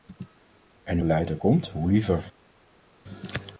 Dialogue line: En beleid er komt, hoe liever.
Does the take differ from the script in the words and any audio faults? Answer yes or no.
no